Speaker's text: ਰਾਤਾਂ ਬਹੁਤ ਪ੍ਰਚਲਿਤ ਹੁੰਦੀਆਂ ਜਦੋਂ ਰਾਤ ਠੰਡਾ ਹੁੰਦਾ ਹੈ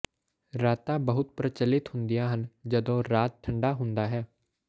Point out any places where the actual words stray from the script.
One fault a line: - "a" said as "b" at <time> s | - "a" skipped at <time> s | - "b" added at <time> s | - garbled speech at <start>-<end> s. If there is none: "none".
- "ਹਨ" added at 2.3 s